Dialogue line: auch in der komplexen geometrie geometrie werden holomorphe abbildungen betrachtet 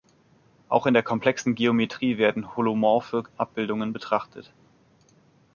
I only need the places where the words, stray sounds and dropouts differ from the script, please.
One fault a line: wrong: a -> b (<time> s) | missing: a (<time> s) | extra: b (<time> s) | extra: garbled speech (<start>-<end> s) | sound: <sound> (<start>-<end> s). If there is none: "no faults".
missing: geometrie (2.2 s)